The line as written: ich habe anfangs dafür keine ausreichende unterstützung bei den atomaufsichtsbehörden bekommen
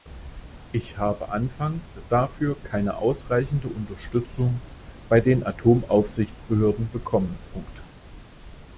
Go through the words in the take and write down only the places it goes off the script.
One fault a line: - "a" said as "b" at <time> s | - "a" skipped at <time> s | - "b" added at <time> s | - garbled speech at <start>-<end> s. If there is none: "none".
none